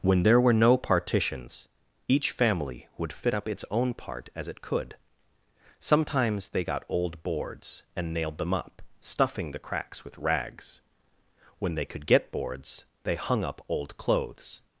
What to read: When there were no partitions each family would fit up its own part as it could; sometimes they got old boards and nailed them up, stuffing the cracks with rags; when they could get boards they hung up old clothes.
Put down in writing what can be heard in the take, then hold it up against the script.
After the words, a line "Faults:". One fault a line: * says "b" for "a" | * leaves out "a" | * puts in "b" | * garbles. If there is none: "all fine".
When there were no partitions each family would fit up its own part as it could; sometimes they got old boards and nailed them up, stuffing the cracks with rags; when they could get boards they hung up old clothes.
Faults:
all fine